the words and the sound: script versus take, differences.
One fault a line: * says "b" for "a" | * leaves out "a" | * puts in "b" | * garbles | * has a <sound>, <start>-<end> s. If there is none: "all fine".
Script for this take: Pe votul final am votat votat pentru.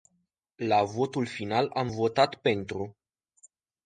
* says "La" for "Pe"
* leaves out "votat"